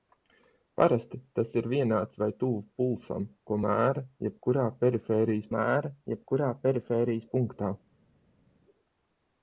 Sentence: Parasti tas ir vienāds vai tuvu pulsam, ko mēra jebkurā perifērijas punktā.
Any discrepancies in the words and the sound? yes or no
yes